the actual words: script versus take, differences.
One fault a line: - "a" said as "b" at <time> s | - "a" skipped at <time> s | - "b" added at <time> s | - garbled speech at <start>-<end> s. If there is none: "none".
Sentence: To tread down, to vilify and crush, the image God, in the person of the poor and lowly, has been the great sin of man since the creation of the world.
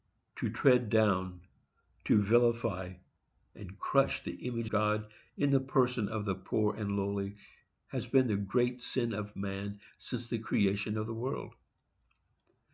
none